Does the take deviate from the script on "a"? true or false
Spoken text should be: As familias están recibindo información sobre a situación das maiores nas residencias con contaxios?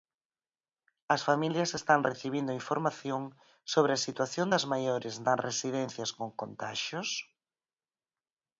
false